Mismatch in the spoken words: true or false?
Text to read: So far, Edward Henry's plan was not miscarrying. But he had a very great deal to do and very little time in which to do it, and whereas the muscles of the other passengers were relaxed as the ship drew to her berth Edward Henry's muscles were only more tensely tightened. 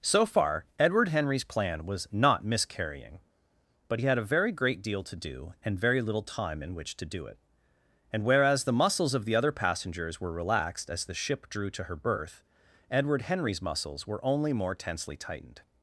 false